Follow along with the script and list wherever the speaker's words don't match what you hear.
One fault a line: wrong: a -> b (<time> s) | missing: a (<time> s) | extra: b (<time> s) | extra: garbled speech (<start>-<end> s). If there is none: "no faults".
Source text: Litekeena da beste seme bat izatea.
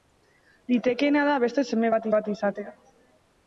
extra: bat (2.2 s)